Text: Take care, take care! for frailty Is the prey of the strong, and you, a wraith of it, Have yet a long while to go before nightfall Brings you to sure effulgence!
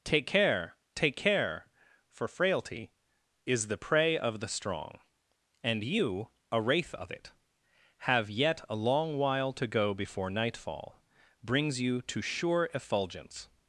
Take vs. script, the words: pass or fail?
pass